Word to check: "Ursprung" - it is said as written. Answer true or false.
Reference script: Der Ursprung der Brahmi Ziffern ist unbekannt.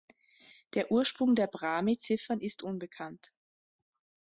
true